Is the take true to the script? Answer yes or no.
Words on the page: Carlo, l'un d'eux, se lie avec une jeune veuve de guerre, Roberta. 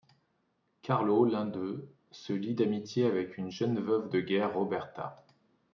no